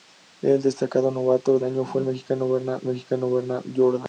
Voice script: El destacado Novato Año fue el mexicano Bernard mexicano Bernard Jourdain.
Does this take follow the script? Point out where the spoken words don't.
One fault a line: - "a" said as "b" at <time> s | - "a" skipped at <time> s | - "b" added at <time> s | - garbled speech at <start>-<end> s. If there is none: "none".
none